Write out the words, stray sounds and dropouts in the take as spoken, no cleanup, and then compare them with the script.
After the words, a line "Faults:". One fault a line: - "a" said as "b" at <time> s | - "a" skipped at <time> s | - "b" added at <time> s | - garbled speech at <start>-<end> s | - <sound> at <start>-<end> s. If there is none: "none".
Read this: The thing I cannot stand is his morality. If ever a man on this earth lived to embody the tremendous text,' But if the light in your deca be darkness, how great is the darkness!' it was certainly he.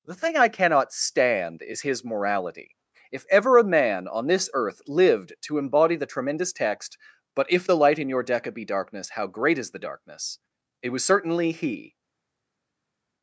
The thing I cannot stand is his morality. If ever a man on this earth lived to embody the tremendous text,' But if the light in your deca be darkness, how great is the darkness!' it was certainly he.
Faults:
none